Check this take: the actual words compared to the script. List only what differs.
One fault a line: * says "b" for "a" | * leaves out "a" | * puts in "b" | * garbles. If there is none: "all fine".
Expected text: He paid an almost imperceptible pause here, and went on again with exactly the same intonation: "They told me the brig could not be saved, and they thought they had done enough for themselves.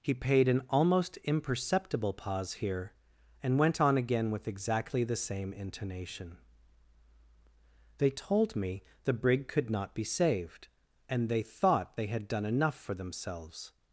all fine